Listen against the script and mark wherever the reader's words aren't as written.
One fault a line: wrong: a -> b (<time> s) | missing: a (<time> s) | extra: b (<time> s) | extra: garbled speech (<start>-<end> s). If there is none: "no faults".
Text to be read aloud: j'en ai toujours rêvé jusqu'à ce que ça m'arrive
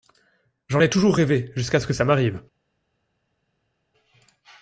no faults